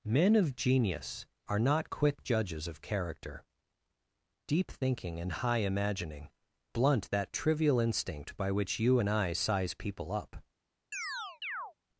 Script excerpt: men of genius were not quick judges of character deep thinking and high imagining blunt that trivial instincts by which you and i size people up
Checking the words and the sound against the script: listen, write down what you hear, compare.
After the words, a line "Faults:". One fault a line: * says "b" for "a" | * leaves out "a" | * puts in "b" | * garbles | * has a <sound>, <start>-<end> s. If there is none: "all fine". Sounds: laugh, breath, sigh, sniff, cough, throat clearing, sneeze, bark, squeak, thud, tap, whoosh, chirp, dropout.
men of genius are not quick judges of character deep thinking and high imagining blunt that trivial instinct by which you and i size people up
Faults:
* says "are" for "were"
* says "instinct" for "instincts"
* has a chirp, 10.9-11.7 s